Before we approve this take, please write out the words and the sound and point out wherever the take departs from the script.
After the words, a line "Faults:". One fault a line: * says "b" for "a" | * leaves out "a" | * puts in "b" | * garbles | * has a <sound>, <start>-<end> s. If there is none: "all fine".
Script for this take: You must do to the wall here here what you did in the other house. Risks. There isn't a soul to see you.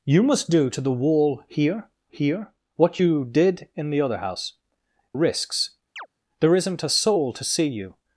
You must do to the wall here here what you did in the other house. Risks. There isn't a soul to see you.
Faults:
* has a chirp, 6.0-6.1 s